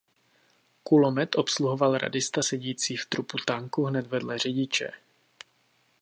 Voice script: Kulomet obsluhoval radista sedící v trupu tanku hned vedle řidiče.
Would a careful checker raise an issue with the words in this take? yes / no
no